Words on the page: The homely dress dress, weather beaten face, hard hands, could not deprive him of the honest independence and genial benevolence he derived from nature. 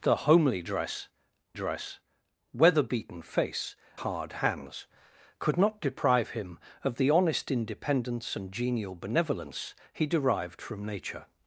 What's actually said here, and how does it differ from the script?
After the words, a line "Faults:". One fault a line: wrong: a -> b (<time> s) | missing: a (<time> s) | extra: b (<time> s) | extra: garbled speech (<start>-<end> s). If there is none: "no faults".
The homely dress dress, weather beaten face, hard hands, could not deprive him of the honest independence and genial benevolence he derived from nature.
Faults:
no faults